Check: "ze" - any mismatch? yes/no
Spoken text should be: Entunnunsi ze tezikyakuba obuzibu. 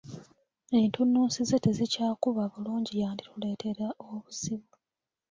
no